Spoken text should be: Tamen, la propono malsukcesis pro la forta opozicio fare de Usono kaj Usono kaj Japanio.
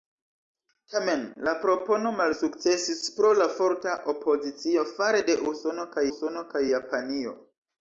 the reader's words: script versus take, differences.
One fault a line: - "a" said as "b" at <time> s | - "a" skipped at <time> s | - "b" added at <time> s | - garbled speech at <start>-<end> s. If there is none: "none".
none